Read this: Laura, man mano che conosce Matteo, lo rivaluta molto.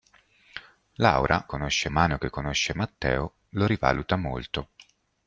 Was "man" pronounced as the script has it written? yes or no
no